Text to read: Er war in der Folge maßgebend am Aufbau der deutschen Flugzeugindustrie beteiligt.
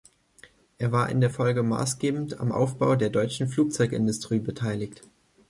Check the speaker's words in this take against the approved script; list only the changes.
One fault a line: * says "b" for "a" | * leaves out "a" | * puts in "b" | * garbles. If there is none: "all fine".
all fine